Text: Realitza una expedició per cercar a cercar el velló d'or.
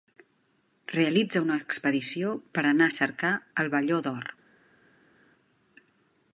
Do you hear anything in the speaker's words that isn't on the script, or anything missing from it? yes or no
yes